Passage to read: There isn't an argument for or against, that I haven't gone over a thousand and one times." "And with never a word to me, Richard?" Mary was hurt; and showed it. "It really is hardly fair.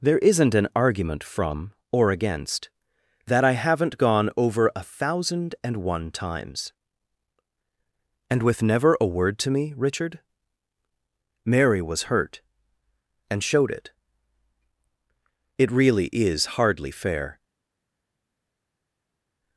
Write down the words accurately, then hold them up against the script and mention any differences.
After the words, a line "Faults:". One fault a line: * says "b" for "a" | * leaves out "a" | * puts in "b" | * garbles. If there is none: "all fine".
There isn't an argument from or against, that I haven't gone over a thousand and one times." "And with never a word to me, Richard?" Mary was hurt; and showed it. "It really is hardly fair.
Faults:
* says "from" for "for"